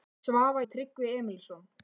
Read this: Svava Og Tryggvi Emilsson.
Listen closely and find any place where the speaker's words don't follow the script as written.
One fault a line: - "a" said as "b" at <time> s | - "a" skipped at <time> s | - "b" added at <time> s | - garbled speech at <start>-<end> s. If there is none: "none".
none